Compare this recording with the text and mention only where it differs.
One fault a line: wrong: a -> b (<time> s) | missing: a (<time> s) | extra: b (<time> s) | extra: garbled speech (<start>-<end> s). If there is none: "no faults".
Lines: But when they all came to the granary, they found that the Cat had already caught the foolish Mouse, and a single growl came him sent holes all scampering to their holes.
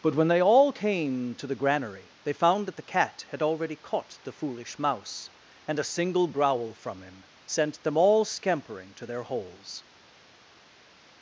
wrong: came -> from (6.7 s)
wrong: holes -> them (7.8 s)